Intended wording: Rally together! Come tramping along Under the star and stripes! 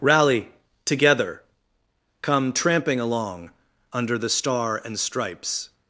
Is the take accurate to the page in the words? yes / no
yes